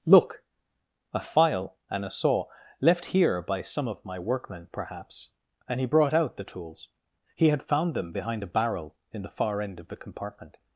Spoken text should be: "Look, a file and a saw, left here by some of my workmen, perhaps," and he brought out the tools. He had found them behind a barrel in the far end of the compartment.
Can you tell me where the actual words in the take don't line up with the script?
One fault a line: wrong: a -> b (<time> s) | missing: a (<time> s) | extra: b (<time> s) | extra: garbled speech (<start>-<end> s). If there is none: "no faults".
no faults